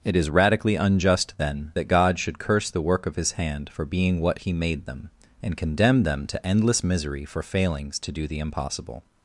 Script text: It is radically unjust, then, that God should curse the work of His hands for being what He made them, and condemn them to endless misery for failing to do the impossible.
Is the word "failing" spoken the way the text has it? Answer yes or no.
no